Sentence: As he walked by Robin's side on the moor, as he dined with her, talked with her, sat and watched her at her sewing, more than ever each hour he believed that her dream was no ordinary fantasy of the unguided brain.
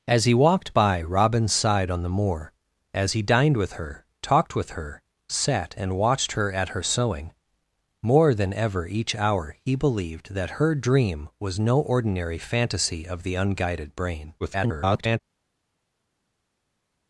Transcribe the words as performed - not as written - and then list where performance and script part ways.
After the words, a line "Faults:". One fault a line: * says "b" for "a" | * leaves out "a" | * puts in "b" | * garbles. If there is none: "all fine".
As he walked by Robin's side on the moor, as he dined with her, talked with her, sat and watched her at her sewing, more than ever each hour he believed that her dream was no ordinary fantasy of the unguided brain. [garbled]
Faults:
* garbles